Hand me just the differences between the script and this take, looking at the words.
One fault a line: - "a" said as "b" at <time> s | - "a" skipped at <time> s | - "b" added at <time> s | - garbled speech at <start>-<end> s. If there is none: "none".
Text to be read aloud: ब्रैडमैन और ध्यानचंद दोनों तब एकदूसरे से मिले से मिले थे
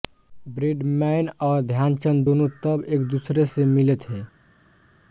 - "से मिले" skipped at 4.0 s